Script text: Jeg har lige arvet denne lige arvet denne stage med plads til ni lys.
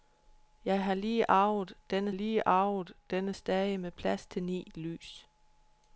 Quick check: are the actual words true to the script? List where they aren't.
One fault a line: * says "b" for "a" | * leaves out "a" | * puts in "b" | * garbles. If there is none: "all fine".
all fine